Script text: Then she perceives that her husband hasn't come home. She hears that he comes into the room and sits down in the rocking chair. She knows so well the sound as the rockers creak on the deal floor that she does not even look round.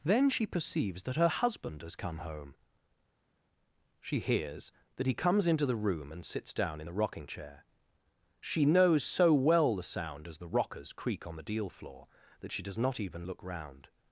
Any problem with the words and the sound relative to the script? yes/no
yes